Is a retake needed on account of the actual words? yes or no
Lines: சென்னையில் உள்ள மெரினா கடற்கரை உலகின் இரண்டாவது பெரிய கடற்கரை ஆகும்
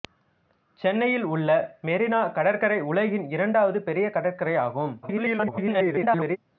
yes